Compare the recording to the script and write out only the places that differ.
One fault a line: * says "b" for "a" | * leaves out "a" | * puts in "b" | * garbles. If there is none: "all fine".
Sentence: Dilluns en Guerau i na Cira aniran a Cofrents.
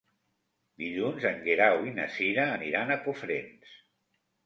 all fine